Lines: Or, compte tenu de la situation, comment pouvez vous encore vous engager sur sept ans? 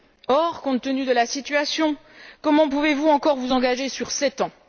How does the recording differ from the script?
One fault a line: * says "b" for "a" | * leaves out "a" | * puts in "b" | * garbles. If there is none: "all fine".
all fine